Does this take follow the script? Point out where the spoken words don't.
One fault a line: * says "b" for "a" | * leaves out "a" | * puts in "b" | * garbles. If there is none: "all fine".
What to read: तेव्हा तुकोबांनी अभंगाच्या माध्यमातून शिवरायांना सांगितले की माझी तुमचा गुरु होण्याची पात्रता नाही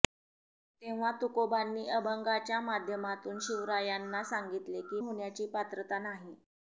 * leaves out "माझी तुमचा गुरु"